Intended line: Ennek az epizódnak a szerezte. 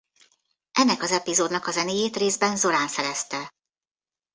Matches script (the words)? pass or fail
fail